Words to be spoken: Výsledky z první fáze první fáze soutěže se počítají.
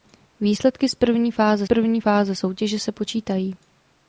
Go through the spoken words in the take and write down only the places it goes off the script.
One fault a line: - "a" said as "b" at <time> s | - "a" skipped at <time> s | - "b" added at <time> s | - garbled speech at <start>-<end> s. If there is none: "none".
none